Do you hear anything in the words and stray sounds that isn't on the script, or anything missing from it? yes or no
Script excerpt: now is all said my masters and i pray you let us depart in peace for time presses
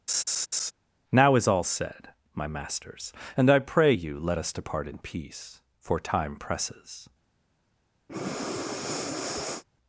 yes